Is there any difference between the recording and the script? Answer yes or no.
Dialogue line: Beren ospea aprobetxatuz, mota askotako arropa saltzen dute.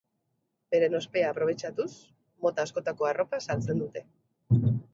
no